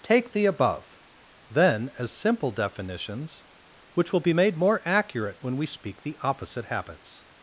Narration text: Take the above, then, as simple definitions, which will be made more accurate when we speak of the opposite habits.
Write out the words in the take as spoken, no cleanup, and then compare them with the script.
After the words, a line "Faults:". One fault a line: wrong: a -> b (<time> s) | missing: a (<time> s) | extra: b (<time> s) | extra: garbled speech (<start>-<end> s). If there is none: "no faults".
Take the above, then, as simple definitions, which will be made more accurate when we speak the opposite habits.
Faults:
missing: of (6.0 s)